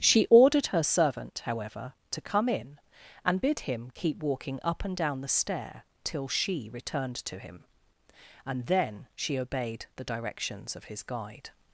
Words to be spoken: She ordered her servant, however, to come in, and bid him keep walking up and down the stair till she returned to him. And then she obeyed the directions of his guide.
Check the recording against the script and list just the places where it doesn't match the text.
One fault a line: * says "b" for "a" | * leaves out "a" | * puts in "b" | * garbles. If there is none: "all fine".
all fine